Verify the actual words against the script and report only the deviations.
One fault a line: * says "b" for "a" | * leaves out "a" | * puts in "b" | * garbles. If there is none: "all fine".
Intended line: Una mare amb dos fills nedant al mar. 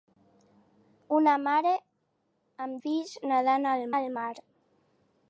* leaves out "dos"
* puts in "al"